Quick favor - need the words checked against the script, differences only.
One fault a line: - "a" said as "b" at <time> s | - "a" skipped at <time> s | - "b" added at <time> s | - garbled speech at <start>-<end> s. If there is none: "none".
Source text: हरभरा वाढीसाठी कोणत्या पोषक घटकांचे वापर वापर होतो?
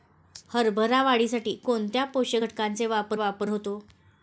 none